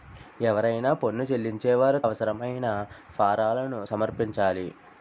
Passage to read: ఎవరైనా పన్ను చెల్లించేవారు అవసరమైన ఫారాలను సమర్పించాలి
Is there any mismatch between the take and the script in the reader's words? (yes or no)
no